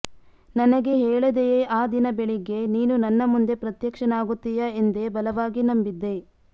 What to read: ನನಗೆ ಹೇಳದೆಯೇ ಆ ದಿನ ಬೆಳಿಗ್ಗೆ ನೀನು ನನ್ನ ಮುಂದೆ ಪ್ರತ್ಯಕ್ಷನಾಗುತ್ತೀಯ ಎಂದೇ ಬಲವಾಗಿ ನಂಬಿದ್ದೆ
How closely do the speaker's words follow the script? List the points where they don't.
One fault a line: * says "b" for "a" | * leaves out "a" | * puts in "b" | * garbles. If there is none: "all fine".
all fine